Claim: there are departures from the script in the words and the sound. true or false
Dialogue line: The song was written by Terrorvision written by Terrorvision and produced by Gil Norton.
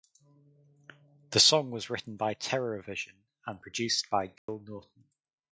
true